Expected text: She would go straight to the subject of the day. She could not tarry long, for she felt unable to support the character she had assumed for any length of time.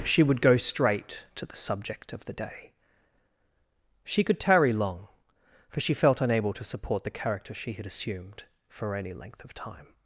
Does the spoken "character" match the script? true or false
true